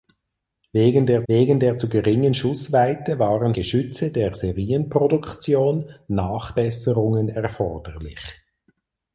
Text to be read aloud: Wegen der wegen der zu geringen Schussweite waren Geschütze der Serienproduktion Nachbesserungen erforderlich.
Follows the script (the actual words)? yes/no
yes